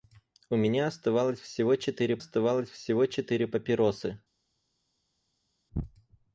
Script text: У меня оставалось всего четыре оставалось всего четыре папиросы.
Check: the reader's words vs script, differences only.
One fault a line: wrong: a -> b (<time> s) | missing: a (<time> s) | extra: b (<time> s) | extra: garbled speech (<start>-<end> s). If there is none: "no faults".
no faults